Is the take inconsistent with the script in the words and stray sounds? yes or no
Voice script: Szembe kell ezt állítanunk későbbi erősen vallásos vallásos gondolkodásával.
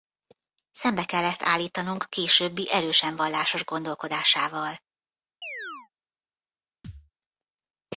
yes